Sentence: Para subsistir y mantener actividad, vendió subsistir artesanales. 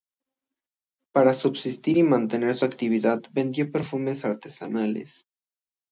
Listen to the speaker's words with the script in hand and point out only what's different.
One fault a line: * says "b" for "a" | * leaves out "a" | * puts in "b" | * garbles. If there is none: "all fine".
* puts in "su"
* says "perfumes" for "subsistir"